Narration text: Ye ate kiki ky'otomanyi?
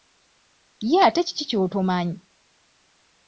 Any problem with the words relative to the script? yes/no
no